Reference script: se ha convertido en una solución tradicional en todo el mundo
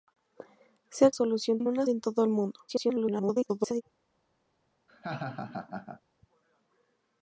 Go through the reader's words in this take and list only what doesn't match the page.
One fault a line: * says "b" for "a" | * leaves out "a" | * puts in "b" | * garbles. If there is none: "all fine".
* says "solución" for "convertido"
* leaves out "solución tradicional"
* garbles